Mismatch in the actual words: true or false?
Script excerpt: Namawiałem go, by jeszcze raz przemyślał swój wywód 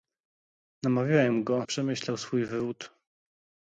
true